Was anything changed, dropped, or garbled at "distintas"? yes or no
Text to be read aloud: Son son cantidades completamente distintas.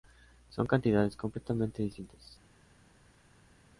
no